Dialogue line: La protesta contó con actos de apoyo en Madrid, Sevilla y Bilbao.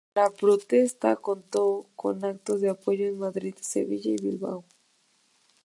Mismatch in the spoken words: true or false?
false